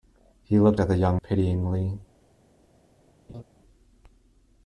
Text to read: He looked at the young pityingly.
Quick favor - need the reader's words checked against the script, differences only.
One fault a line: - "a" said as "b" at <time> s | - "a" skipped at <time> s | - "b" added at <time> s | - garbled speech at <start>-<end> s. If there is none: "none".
none